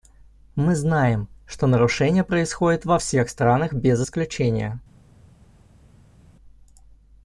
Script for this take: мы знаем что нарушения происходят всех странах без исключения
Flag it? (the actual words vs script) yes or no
yes